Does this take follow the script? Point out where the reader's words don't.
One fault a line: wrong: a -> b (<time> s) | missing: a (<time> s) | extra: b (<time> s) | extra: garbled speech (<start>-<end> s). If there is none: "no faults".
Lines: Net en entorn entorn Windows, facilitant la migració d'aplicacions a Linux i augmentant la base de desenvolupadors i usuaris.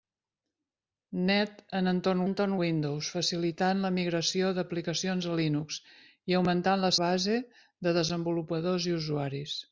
no faults